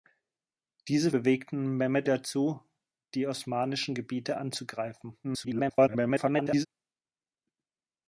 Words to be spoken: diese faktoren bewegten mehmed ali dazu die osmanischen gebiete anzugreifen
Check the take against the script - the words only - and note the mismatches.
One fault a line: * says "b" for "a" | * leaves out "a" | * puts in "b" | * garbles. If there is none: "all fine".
* leaves out "faktoren"
* leaves out "ali"
* garbles